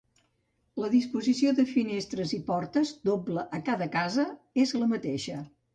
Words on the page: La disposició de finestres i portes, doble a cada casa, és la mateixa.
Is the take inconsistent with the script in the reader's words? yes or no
no